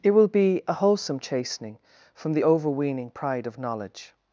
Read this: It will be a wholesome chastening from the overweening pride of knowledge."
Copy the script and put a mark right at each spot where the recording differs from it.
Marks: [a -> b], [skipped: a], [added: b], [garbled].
It will be a wholesome chastening from the overweening pride of knowledge."